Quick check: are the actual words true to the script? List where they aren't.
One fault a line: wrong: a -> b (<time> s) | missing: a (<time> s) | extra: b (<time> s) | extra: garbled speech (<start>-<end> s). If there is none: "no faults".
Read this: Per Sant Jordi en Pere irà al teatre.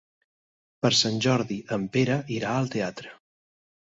no faults